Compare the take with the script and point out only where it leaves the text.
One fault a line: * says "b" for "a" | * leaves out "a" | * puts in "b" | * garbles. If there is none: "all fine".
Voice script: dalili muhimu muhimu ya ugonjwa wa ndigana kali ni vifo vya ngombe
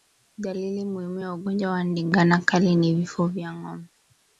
* leaves out "muhimu"